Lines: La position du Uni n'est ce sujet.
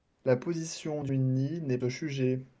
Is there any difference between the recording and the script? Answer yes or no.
no